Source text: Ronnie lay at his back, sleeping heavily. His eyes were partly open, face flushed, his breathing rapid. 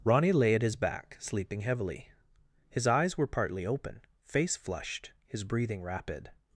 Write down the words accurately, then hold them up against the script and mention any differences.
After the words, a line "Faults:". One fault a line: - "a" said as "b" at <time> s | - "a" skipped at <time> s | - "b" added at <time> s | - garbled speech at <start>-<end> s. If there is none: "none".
Ronnie lay at his back, sleeping heavily. His eyes were partly open, face flushed, his breathing rapid.
Faults:
none